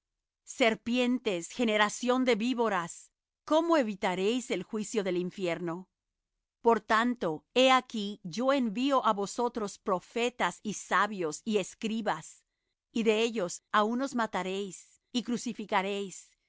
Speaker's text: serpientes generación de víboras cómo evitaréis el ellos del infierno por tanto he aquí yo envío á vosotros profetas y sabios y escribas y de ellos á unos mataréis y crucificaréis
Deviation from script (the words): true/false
true